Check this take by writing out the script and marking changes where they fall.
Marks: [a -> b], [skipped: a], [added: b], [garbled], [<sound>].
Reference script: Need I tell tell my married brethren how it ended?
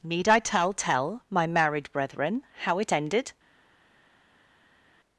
Need I tell tell my married brethren how it ended?